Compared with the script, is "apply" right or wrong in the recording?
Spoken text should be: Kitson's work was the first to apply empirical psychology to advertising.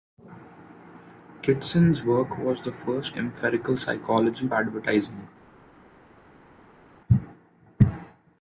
wrong